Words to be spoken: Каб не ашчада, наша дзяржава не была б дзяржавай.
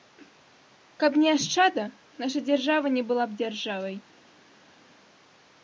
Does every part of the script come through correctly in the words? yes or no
yes